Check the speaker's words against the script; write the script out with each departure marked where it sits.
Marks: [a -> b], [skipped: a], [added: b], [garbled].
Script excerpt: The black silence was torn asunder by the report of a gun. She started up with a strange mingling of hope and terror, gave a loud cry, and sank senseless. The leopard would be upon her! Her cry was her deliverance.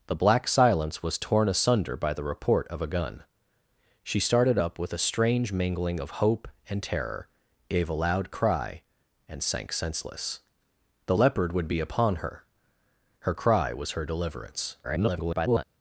The black silence was torn asunder by the report of a gun. She started up with a strange mingling of hope and terror, gave a loud cry, and sank senseless. The leopard would be upon her! Her cry was her deliverance. [garbled]